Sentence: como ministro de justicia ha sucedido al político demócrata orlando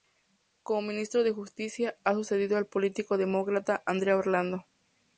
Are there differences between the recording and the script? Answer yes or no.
yes